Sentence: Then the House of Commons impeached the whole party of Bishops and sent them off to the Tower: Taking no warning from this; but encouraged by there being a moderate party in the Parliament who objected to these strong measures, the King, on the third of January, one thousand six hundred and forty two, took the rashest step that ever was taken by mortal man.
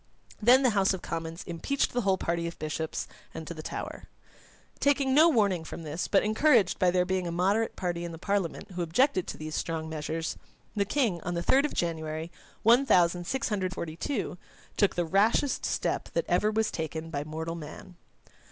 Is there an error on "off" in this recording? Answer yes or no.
yes